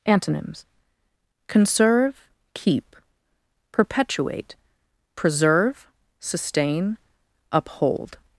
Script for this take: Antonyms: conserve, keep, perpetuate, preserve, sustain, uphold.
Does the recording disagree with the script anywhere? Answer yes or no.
no